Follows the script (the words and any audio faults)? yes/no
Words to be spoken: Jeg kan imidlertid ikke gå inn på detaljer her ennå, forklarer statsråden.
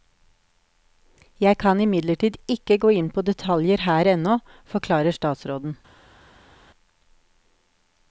yes